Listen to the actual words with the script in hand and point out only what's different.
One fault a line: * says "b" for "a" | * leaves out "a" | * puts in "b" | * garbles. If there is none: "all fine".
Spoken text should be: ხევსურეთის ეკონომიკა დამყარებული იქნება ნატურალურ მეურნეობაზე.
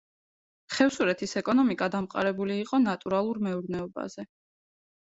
* says "იყო" for "იქნება"